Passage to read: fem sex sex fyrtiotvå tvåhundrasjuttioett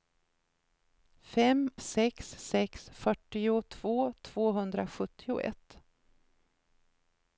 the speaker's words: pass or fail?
pass